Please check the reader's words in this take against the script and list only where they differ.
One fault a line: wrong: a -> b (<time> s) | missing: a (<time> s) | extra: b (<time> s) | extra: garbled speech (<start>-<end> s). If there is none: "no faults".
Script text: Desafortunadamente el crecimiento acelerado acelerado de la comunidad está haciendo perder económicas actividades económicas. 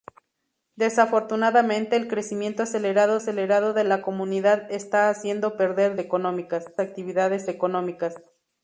no faults